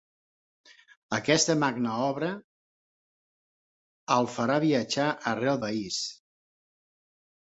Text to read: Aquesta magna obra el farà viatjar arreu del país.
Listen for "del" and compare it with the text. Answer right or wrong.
wrong